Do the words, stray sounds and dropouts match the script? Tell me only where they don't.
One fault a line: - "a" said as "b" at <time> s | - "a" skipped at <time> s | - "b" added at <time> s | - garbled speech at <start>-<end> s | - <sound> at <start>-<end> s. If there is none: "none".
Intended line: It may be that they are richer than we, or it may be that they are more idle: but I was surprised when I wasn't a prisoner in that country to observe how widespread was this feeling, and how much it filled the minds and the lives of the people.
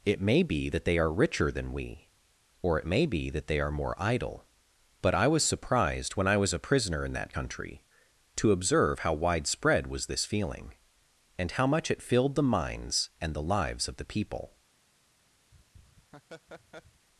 - "wasn't" said as "was" at 6.4 s
- laugh at 15.5-17.1 s